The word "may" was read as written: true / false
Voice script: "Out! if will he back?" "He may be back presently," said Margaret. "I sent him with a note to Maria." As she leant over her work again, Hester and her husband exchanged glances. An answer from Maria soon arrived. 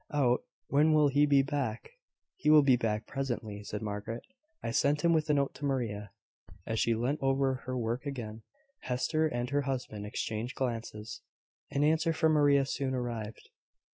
false